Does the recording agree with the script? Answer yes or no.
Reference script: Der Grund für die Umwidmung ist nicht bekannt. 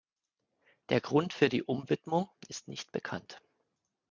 yes